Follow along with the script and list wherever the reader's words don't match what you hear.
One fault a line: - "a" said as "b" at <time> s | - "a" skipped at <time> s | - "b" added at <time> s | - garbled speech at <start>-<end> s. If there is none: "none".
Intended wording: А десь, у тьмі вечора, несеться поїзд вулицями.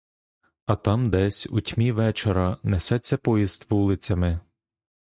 - "там" added at 0.8 s